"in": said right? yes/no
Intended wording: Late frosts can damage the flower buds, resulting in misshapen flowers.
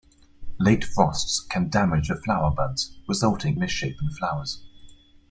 no